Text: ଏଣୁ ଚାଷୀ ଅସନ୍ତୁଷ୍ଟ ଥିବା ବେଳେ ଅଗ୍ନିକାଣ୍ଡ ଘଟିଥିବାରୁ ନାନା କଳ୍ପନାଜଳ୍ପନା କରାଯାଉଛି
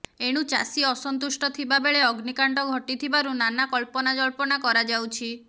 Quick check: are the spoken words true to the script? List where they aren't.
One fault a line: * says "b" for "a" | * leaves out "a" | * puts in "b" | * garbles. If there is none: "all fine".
all fine